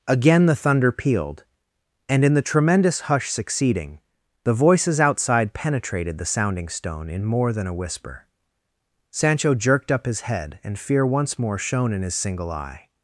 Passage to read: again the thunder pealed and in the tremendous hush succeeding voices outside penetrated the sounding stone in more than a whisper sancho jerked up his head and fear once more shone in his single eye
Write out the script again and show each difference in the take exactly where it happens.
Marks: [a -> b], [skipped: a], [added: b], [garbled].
again the thunder pealed and in the tremendous hush succeeding [added: the] voices outside penetrated the sounding stone in more than a whisper sancho jerked up his head and fear once more shone in his single eye